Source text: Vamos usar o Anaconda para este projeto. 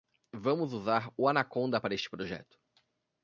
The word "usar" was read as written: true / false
true